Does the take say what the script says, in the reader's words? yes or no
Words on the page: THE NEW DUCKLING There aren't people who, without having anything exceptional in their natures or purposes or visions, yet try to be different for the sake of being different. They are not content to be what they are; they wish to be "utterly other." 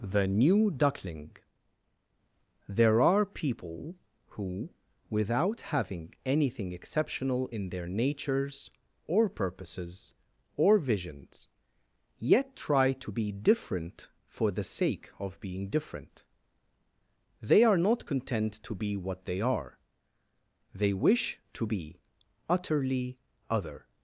no